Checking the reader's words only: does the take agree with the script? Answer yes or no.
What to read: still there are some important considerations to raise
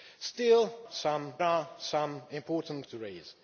no